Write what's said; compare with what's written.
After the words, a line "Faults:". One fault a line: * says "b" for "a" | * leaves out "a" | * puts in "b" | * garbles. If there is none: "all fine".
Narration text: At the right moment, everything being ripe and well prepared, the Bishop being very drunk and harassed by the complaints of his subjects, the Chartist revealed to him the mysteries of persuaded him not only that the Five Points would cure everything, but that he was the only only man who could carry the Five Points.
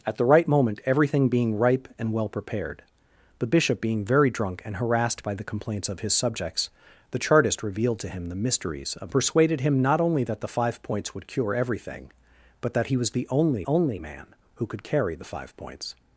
At the right moment, everything being ripe and well prepared, the Bishop being very drunk and harassed by the complaints of his subjects, the Chartist revealed to him the mysteries of persuaded him not only that the Five Points would cure everything, but that he was the only only man who could carry the Five Points.
Faults:
all fine